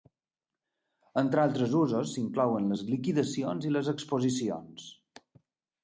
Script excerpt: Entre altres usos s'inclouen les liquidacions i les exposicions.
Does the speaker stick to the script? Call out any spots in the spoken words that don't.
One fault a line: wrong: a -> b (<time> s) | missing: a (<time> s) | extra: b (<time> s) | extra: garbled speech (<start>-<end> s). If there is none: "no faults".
no faults